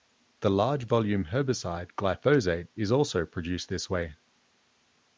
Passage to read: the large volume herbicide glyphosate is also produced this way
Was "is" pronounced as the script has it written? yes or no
yes